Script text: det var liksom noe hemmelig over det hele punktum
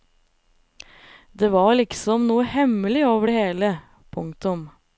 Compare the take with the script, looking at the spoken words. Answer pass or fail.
pass